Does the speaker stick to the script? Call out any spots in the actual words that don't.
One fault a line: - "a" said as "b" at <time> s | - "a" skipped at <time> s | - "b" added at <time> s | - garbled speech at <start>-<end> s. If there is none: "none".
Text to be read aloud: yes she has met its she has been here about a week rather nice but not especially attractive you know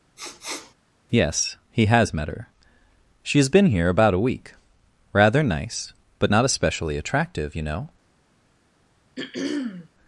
- "she" said as "he" at 1.7 s
- "its" said as "her" at 2.3 s